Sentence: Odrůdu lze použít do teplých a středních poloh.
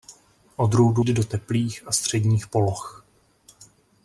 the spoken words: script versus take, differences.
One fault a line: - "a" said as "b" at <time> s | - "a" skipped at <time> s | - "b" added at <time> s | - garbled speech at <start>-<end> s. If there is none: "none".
- "lze použít" skipped at 1.1 s